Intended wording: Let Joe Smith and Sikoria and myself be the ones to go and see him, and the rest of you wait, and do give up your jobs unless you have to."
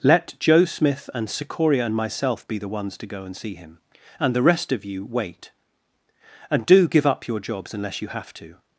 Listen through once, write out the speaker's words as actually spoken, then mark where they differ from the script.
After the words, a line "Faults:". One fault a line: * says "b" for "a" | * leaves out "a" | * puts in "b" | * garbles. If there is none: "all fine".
Let Joe Smith and Sikoria and myself be the ones to go and see him, and the rest of you wait, and do give up your jobs unless you have to."
Faults:
all fine